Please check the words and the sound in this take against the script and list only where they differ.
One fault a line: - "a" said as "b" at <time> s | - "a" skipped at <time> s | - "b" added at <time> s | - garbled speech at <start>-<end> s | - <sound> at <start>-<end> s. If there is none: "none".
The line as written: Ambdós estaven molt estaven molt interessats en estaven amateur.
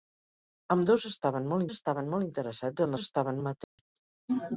- dropout at 3.6-3.8 s